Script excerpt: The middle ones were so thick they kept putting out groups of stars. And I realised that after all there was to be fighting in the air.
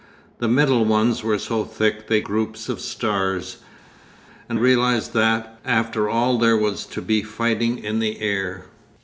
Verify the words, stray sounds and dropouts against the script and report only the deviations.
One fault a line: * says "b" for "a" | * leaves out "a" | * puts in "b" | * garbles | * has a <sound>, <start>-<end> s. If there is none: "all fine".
* leaves out "kept putting out"
* leaves out "I"